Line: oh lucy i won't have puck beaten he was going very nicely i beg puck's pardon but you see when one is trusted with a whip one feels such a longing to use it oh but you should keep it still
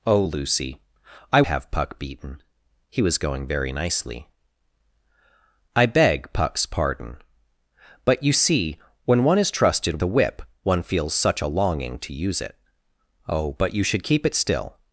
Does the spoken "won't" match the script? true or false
false